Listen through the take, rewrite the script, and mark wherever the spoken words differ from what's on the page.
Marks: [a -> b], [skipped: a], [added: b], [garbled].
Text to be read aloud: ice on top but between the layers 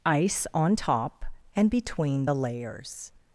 ice on top [but -> and] between the layers